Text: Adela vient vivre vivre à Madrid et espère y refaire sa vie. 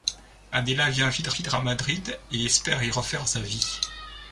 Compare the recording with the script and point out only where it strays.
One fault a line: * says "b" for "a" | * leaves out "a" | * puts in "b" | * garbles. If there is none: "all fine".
all fine